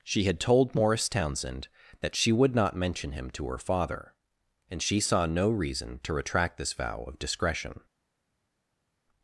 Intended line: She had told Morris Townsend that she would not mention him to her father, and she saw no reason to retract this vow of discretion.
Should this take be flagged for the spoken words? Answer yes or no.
no